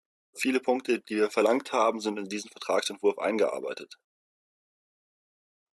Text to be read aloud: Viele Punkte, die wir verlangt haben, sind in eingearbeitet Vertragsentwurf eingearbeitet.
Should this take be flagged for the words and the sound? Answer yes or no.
yes